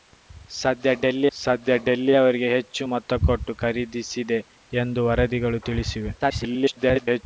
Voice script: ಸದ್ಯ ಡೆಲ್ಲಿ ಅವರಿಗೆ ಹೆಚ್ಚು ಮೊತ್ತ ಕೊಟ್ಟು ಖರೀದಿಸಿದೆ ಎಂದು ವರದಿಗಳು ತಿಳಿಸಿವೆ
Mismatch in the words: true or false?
true